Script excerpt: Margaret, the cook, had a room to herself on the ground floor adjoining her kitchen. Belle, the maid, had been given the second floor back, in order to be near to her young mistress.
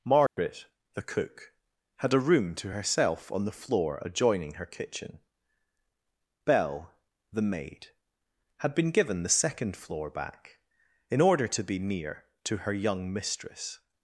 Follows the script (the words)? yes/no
no